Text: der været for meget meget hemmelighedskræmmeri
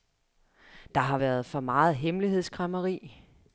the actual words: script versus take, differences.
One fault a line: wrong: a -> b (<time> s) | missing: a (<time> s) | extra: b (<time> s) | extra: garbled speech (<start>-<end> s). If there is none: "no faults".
extra: har (1.0 s)
missing: meget (1.9 s)